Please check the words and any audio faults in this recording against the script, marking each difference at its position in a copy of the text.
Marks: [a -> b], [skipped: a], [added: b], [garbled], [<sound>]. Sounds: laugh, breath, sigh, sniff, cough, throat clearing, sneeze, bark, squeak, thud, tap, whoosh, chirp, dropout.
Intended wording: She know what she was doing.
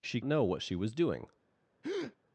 She know what she was doing. [breath]